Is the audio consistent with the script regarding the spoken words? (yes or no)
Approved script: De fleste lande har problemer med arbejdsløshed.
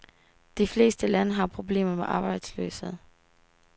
yes